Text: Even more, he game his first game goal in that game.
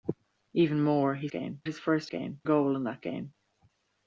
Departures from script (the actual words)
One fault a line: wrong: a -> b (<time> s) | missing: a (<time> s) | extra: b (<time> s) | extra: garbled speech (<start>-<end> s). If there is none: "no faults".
no faults